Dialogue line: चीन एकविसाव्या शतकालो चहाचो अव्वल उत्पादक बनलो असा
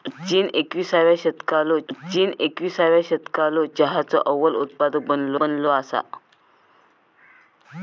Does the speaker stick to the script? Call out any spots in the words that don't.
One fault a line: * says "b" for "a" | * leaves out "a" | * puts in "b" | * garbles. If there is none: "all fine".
* puts in "चीन एकविसाव्या शतकालो"
* puts in "बनलो"